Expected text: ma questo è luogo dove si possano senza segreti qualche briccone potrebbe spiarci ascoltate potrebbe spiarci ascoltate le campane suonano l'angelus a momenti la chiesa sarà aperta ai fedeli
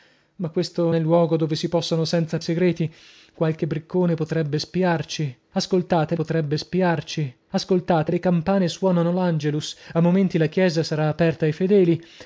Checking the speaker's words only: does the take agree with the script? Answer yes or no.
yes